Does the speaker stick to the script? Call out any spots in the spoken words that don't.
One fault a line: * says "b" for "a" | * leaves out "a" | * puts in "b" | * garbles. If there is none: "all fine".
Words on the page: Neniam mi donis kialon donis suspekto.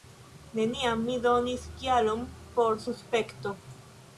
* says "por" for "donis"